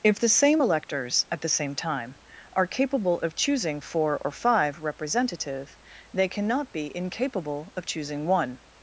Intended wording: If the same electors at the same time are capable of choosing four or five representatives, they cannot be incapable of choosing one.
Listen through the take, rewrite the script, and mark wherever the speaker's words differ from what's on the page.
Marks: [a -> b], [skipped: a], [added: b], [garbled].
If the same electors at the same time are capable of choosing four or five [representatives, -> representative] they cannot be incapable of choosing one.